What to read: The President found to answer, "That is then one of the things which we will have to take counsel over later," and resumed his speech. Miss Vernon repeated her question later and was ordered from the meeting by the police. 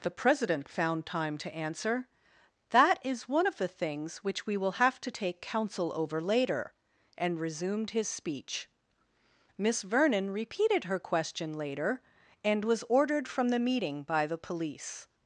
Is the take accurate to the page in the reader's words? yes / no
no